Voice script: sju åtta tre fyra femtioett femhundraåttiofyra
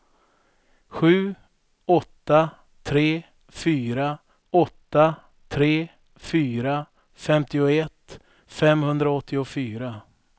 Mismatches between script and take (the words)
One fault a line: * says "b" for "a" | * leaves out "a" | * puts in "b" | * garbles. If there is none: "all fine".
* puts in "åtta tre fyra"